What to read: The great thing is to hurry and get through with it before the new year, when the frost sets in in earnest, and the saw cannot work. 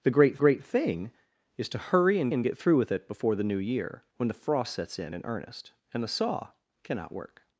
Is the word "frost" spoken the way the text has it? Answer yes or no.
yes